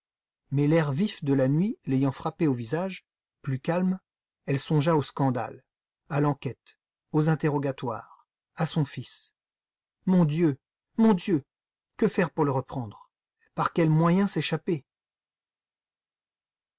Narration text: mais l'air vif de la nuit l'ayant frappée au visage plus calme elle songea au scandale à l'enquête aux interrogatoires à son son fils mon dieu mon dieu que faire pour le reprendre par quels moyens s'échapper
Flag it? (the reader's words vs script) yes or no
yes